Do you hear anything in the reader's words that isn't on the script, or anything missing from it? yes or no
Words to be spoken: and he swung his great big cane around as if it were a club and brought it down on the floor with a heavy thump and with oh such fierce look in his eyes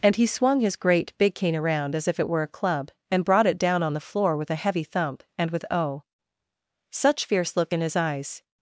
no